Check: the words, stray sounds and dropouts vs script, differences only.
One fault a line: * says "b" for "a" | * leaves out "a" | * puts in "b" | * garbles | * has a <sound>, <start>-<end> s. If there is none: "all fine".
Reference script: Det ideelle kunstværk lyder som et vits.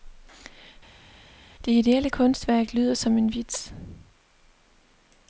* says "en" for "et"